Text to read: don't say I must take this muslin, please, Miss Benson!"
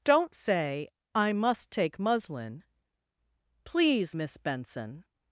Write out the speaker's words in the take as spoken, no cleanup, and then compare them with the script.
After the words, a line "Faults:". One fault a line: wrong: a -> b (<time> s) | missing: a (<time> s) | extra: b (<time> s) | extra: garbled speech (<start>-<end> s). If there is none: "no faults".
don't say I must take muslin, please, Miss Benson!"
Faults:
missing: this (2.0 s)